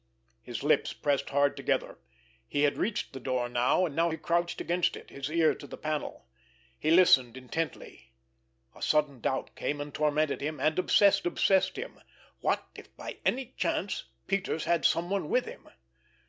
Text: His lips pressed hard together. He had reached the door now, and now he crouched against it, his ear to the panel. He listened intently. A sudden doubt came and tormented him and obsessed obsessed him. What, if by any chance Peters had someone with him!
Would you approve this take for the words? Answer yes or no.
yes